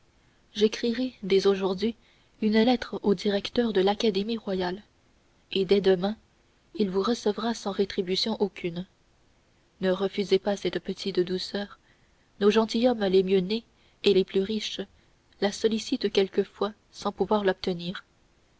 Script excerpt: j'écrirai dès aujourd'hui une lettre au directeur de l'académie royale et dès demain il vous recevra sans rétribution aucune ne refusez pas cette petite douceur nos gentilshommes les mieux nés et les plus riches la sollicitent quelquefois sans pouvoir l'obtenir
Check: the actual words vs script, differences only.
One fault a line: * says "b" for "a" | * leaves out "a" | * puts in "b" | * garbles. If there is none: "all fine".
all fine